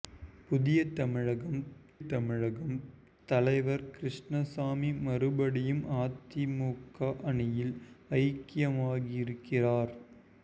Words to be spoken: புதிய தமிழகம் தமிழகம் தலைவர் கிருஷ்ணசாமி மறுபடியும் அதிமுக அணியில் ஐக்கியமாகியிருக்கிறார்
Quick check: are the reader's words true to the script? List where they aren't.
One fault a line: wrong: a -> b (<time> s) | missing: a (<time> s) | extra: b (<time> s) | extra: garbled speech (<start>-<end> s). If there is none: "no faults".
no faults